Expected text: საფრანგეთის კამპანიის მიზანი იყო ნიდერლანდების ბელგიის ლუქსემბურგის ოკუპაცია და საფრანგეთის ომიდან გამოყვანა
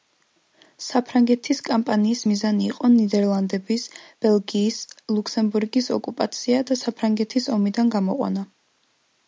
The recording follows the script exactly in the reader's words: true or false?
true